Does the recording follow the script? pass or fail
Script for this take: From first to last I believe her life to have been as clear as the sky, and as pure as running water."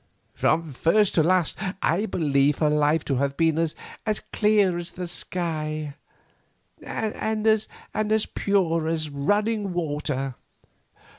pass